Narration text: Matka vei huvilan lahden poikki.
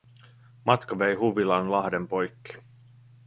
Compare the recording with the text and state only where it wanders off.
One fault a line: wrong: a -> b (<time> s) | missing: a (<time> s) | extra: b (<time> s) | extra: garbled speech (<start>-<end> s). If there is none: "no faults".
no faults